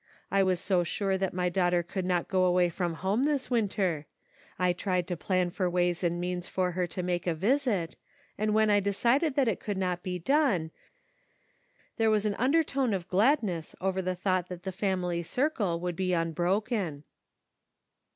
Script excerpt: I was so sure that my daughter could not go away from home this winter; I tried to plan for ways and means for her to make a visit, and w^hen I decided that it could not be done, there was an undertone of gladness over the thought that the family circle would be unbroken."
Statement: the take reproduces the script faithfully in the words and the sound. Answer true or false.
true